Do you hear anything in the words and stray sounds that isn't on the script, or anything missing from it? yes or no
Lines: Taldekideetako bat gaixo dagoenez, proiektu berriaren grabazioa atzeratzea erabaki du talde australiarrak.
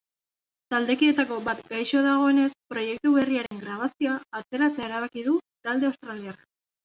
yes